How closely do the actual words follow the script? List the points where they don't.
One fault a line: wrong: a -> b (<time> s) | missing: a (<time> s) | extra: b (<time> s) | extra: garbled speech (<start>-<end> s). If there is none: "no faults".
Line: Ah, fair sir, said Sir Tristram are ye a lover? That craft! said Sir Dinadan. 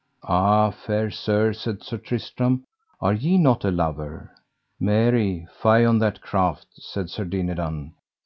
extra: not (3.4 s)
extra: Mary fie on (4.8 s)